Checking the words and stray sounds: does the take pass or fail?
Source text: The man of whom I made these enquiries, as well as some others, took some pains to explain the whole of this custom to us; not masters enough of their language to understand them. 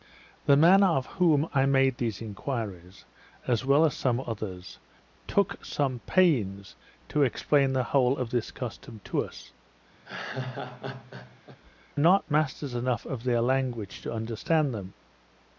fail